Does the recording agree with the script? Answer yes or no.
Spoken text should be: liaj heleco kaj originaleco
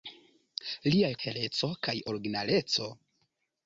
yes